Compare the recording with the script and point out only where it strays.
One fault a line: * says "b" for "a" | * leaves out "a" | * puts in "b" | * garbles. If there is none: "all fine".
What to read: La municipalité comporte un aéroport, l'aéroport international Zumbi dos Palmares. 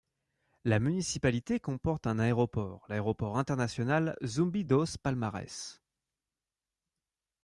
all fine